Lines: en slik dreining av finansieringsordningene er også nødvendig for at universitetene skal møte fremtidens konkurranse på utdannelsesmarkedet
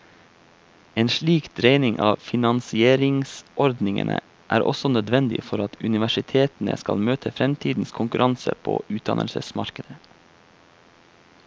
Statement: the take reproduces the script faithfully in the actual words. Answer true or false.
true